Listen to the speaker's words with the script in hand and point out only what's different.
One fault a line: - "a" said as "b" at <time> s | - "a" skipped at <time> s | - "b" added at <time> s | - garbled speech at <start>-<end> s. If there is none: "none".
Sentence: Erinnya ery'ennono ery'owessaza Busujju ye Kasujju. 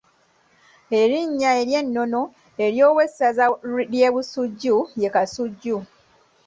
- "ly'e" added at 3.9 s